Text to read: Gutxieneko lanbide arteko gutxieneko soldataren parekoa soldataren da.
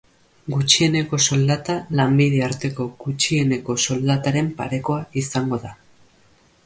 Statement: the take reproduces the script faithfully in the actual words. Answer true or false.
false